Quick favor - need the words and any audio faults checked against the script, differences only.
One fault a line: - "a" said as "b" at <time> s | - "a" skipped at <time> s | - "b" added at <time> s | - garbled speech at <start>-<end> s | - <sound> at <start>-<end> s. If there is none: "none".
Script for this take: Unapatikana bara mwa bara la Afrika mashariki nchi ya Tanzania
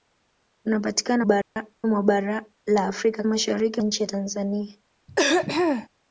- dropout at 1.4-1.6 s
- throat clearing at 5.1-5.9 s